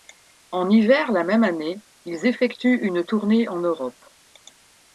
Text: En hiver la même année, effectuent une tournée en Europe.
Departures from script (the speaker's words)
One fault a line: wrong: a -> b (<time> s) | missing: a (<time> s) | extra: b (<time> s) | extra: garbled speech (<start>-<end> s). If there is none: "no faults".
extra: ils (2.0 s)